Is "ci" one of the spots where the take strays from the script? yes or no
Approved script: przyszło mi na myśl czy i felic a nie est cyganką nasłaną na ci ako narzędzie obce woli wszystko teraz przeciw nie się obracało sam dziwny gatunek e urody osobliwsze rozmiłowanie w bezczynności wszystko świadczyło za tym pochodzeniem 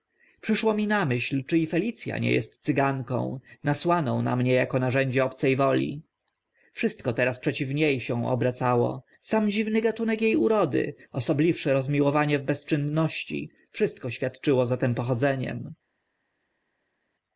yes